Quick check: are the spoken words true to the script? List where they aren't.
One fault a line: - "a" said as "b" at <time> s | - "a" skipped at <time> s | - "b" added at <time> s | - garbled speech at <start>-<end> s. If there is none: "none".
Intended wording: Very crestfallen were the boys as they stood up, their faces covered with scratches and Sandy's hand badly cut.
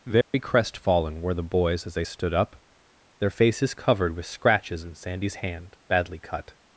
- "and" said as "in" at 4.8 s